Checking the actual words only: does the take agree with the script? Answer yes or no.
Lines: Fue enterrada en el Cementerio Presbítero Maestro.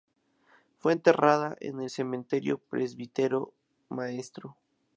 yes